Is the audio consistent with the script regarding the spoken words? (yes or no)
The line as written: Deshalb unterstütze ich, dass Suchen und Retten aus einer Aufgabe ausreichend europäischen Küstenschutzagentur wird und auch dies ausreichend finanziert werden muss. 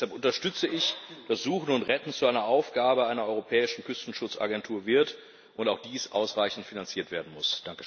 no